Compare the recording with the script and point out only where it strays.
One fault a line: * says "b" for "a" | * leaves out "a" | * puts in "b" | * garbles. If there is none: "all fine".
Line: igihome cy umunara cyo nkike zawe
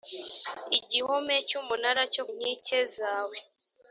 all fine